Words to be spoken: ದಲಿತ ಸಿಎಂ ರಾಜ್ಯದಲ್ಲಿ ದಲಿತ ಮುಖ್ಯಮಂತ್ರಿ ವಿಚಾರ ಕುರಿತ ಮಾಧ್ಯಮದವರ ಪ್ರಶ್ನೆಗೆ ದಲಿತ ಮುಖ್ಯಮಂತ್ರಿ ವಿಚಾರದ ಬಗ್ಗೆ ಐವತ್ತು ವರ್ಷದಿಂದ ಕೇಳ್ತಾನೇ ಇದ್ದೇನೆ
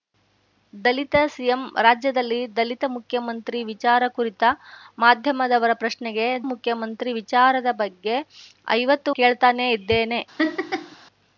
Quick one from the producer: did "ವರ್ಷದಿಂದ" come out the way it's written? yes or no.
no